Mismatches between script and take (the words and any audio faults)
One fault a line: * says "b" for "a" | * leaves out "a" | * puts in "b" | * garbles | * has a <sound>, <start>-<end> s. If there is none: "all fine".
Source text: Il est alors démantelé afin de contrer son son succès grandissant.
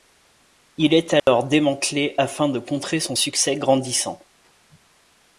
* has a dropout, 1.2-1.3 s
* leaves out "son"